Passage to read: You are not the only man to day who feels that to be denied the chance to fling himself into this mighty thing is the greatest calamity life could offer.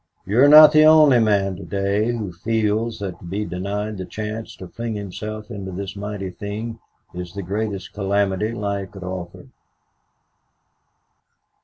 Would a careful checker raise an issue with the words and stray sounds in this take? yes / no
no